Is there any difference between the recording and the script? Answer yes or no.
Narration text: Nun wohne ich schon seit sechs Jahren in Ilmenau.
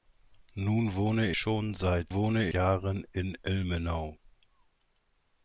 yes